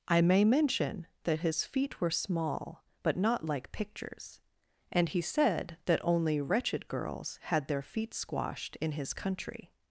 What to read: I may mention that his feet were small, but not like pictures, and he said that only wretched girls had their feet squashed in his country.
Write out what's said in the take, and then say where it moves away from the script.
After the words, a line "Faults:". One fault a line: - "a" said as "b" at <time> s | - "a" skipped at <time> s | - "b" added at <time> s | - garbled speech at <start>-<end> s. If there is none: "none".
I may mention that his feet were small, but not like pictures, and he said that only wretched girls had their feet squashed in his country.
Faults:
none